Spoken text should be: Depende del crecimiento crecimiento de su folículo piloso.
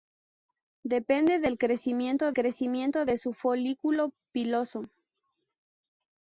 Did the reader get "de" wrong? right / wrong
right